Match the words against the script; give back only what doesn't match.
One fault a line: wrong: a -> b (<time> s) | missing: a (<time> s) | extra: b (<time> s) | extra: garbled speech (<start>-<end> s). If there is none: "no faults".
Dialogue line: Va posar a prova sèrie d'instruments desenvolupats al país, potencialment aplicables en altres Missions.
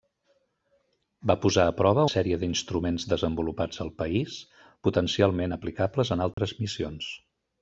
no faults